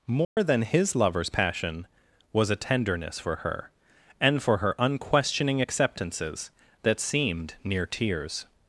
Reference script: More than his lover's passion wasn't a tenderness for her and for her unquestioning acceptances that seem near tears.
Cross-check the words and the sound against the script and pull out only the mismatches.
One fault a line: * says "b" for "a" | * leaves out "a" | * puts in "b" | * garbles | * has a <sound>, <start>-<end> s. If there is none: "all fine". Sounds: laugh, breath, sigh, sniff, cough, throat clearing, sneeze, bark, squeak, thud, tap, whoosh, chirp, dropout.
* has a dropout, 0.2-0.4 s
* says "was" for "wasn't"
* says "seemed" for "seem"